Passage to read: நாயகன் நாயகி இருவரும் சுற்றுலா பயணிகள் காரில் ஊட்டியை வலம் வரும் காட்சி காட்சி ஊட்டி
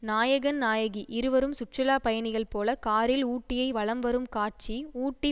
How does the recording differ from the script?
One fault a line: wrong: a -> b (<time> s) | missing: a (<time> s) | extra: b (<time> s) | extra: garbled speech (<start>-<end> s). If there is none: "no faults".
extra: போல (2.5 s)
missing: காட்சி (4.8 s)